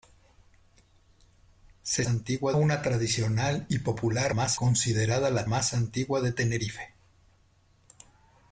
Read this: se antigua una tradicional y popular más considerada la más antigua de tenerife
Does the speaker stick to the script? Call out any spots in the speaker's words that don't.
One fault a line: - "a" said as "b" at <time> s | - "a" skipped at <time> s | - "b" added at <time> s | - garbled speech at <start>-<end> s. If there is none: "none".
none